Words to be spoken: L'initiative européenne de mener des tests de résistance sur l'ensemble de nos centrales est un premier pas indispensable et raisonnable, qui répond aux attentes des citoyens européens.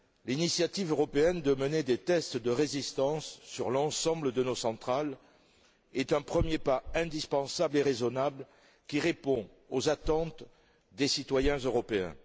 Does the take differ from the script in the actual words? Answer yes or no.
no